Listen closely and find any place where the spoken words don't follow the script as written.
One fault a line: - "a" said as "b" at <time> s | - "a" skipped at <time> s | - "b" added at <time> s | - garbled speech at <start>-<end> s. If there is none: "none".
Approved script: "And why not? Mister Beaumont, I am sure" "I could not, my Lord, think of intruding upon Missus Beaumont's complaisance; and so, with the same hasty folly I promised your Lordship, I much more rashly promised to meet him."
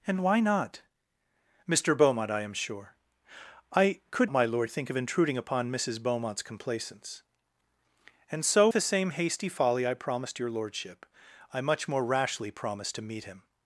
- "not" skipped at 4.3 s
- "with" skipped at 8.7 s